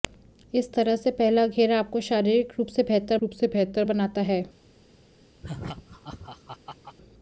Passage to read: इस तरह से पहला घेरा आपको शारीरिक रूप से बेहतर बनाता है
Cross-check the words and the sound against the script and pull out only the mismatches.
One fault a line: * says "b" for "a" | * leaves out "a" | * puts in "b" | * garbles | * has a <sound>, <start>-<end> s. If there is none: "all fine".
* puts in "रूप से बेहतर"
* has a laugh, 5.4-7.0 s